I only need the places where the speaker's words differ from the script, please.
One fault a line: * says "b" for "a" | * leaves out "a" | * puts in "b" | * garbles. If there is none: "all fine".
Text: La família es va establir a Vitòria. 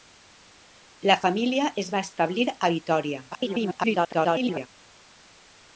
* garbles